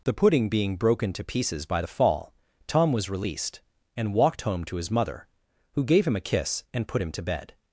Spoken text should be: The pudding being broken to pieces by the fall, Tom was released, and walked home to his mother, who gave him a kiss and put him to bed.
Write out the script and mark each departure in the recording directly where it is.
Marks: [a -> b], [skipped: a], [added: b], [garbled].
The pudding being broken to pieces by the fall, Tom was released, and walked home to his mother, who gave him a kiss and put him to bed.